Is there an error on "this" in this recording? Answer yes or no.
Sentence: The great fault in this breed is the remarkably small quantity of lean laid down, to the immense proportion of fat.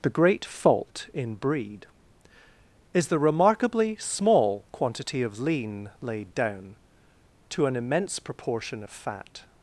yes